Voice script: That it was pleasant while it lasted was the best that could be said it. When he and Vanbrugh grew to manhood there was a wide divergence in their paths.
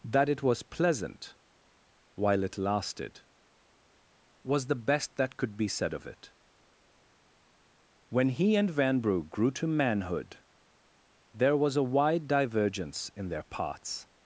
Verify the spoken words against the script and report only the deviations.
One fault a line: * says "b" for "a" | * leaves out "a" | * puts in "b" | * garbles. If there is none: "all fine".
* puts in "of"